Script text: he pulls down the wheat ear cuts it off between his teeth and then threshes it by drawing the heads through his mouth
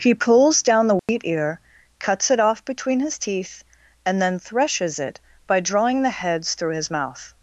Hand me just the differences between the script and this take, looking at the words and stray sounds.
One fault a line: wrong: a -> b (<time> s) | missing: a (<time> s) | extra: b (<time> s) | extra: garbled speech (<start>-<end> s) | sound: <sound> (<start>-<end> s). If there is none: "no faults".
sound: dropout (1.0-1.1 s)